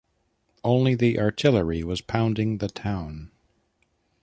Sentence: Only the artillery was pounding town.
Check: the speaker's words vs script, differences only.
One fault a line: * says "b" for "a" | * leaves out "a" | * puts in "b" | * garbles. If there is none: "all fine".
* puts in "the"